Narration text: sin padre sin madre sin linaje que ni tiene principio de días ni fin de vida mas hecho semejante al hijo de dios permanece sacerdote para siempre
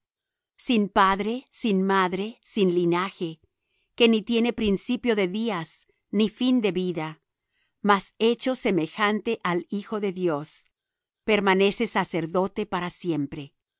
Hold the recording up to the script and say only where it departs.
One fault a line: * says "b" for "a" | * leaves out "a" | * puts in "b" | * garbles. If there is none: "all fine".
all fine